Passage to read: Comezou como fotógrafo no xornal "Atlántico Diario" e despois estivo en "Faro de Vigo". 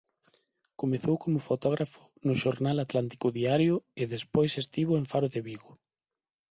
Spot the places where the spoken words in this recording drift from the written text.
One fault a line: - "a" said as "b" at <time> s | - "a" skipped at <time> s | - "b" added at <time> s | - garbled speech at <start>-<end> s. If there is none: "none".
none